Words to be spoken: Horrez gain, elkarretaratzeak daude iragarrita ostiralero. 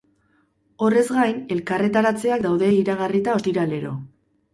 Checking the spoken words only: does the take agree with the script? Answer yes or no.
yes